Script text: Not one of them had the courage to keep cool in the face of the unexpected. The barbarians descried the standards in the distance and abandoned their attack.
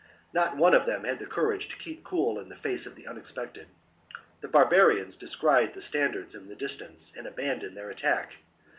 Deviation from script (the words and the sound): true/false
false